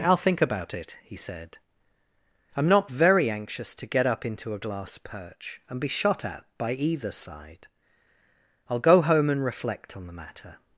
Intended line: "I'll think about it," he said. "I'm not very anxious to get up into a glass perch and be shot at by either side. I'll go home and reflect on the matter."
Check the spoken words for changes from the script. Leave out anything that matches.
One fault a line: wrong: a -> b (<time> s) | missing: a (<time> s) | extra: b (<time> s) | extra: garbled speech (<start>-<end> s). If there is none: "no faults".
no faults